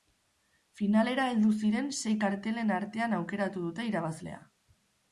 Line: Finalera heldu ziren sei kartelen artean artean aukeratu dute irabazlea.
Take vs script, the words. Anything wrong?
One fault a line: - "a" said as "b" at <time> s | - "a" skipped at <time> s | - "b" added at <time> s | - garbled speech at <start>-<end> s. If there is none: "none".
- "artean" skipped at 3.2 s